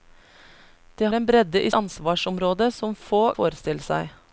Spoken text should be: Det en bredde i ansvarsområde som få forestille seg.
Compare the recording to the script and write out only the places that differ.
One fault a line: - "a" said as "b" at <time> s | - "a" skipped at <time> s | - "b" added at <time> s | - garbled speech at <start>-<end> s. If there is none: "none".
none